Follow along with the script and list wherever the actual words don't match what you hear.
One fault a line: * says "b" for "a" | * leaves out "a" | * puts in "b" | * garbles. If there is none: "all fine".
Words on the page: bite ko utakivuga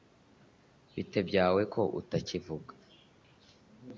* puts in "byawe"